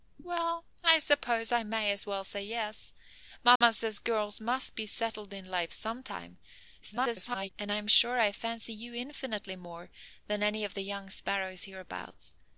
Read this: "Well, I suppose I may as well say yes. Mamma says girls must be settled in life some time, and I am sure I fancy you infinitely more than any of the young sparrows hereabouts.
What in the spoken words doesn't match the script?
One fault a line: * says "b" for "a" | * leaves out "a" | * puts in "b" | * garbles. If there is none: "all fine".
* garbles